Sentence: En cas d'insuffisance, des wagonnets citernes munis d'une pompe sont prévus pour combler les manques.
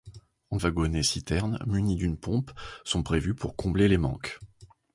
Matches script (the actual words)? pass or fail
fail